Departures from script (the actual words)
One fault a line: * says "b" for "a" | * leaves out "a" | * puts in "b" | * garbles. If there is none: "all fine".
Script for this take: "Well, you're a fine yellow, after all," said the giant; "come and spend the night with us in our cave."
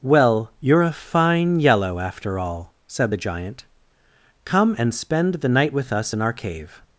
all fine